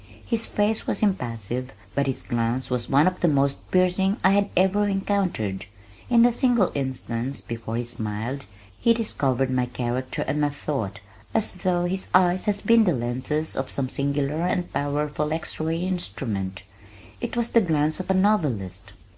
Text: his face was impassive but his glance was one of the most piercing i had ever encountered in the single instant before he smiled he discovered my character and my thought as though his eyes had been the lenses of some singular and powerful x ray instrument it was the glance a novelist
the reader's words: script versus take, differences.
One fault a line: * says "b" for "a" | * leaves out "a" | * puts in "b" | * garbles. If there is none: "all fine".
* puts in "of"